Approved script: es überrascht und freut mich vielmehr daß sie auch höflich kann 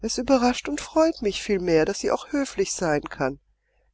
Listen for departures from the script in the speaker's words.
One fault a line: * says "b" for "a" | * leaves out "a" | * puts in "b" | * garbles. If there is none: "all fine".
* puts in "sein"